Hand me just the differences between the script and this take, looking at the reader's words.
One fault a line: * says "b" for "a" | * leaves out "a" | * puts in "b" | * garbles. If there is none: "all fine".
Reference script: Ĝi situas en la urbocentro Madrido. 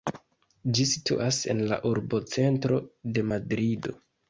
* puts in "de"